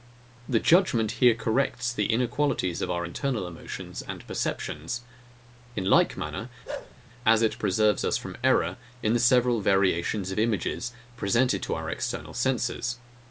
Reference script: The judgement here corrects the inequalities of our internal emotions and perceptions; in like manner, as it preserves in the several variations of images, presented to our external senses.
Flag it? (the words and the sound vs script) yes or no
yes